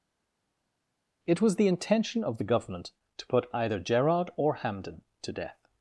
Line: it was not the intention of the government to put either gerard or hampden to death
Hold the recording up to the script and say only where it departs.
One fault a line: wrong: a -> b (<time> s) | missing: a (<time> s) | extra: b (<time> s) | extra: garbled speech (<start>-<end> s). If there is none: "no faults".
missing: not (1.6 s)